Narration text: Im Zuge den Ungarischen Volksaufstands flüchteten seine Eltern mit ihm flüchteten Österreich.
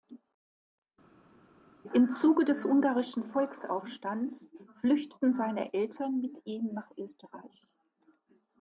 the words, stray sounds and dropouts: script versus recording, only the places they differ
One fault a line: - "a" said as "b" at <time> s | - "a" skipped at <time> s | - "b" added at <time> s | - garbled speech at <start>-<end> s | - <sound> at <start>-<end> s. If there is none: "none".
- "den" said as "des" at 2.4 s
- "flüchteten" said as "nach" at 6.7 s